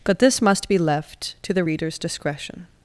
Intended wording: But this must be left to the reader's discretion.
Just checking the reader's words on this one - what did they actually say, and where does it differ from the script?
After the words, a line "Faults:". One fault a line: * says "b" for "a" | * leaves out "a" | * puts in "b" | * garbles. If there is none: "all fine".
But this must be left to the reader's discretion.
Faults:
all fine